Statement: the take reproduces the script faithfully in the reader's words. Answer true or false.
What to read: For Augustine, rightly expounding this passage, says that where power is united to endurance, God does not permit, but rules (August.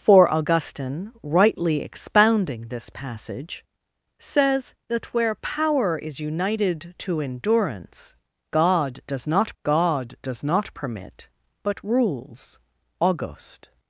false